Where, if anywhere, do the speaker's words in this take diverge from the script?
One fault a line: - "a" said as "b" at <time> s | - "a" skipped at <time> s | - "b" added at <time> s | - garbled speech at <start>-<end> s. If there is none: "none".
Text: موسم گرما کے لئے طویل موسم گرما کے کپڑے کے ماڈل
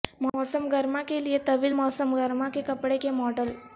none